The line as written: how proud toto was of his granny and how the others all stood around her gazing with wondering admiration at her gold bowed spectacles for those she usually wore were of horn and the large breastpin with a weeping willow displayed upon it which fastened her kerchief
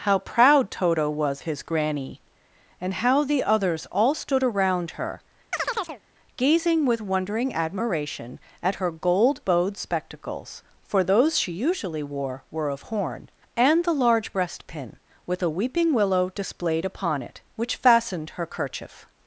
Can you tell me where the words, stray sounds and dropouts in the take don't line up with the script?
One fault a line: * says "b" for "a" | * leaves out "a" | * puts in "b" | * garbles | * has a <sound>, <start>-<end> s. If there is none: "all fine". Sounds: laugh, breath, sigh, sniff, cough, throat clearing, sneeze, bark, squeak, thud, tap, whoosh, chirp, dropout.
* leaves out "of"
* has a chirp, 5.5-6.0 s